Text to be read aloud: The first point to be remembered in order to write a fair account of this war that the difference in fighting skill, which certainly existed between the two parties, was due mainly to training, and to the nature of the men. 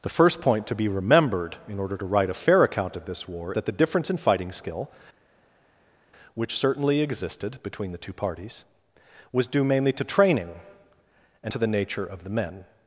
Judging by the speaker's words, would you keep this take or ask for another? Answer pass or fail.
pass